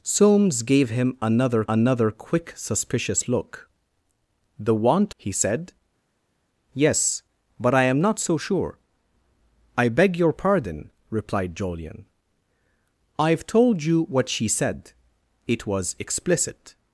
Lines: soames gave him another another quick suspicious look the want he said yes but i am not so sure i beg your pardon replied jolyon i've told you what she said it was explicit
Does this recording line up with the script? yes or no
yes